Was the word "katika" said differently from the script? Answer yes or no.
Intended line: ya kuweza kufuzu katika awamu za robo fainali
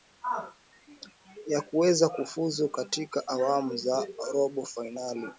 no